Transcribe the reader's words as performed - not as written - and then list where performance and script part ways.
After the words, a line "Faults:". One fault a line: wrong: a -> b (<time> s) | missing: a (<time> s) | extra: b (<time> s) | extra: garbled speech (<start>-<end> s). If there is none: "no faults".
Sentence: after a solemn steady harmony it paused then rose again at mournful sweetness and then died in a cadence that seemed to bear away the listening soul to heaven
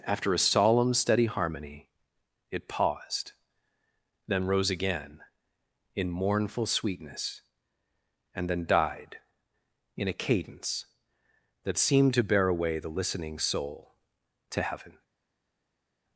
after a solemn steady harmony it paused then rose again in mournful sweetness and then died in a cadence that seemed to bear away the listening soul to heaven
Faults:
wrong: at -> in (6.0 s)